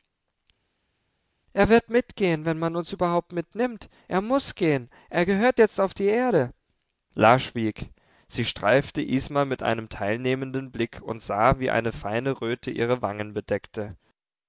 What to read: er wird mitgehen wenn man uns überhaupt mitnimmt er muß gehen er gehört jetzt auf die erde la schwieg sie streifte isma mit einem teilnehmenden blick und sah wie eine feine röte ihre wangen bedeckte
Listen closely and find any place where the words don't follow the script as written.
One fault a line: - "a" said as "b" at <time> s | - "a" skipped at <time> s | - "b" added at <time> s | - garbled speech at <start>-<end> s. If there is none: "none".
none